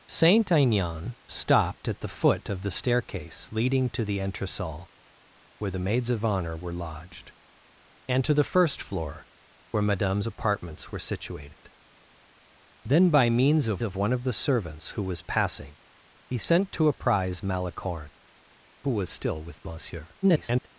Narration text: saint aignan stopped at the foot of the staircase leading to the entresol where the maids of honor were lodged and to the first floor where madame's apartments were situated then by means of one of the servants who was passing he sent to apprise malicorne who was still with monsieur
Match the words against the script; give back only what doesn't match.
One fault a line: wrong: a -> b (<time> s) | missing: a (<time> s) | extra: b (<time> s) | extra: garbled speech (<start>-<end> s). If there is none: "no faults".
extra: of (13.8 s)
extra: garbled speech (20.2-20.7 s)